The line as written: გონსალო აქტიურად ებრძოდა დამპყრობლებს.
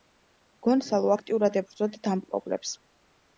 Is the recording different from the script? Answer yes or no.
no